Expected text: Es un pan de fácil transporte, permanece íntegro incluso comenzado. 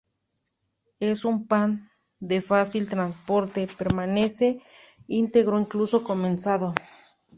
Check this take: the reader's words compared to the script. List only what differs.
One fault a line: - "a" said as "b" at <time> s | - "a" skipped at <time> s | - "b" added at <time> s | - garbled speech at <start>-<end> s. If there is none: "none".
none